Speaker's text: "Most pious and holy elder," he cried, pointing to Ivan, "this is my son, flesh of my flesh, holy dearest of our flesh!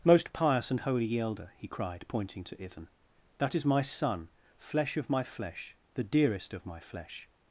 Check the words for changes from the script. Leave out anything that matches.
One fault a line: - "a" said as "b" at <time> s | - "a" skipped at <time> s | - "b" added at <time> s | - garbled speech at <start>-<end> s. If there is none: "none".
- "this" said as "that" at 3.4 s
- "holy" said as "the" at 5.9 s
- "our" said as "my" at 6.7 s